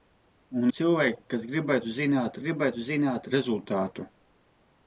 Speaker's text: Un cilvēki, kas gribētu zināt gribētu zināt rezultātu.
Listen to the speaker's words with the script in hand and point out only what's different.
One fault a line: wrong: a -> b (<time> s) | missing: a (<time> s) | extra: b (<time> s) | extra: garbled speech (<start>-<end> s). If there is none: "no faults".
no faults